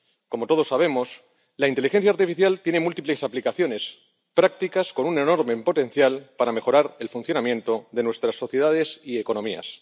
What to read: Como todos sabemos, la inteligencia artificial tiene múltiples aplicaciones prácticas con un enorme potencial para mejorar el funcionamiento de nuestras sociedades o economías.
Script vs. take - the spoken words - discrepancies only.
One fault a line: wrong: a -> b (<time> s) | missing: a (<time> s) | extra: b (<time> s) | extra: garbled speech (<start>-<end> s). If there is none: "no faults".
wrong: o -> y (9.0 s)